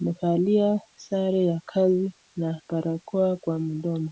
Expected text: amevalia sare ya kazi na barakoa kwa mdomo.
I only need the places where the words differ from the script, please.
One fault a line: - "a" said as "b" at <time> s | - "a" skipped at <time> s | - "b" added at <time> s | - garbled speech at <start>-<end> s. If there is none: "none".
none